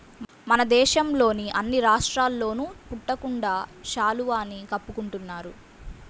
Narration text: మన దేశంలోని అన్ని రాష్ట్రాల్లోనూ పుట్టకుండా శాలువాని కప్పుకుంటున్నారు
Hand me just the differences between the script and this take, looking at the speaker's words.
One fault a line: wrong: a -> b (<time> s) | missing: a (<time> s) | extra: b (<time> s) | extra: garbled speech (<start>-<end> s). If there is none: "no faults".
no faults